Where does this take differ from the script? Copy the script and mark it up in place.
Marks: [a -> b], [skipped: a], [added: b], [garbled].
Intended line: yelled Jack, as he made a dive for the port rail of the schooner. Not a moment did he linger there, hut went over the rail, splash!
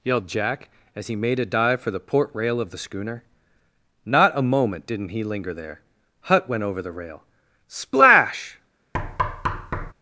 yelled Jack, as he made a dive for the port rail of the schooner. Not a moment [did -> didn't] he linger there, hut went over the rail, splash!